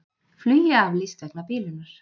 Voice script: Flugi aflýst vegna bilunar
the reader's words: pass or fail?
pass